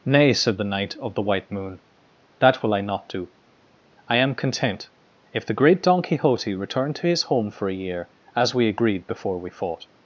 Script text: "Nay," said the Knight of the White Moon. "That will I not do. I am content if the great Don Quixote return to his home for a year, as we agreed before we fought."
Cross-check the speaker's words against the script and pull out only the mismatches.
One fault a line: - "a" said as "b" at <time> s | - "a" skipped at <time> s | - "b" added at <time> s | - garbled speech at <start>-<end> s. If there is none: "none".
none